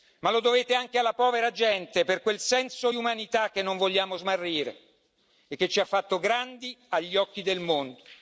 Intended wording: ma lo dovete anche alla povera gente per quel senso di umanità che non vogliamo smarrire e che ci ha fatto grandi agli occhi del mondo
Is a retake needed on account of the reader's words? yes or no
no